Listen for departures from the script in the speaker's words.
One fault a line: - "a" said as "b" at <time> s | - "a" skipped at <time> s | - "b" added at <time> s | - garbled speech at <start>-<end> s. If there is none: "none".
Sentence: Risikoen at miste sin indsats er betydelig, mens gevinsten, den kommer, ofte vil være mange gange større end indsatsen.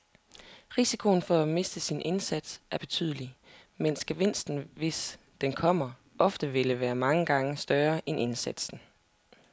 - "for" added at 1.2 s
- "hvis" added at 4.7 s